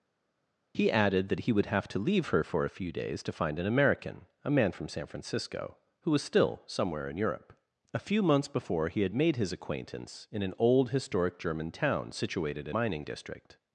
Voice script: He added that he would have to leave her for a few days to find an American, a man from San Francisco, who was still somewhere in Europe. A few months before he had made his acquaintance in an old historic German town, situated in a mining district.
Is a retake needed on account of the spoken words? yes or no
yes